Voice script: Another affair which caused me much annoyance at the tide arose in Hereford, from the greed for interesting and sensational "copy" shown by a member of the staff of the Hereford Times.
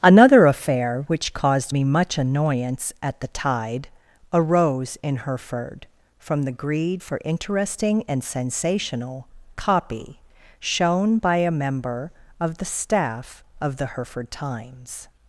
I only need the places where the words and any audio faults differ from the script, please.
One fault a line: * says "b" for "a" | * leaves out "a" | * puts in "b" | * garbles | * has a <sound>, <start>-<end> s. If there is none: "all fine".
all fine